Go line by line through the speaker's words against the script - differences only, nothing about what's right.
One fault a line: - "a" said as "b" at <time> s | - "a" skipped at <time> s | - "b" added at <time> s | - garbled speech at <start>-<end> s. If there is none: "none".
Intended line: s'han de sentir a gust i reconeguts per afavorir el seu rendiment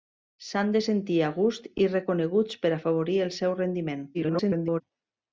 - garbled speech at 4.1-4.8 s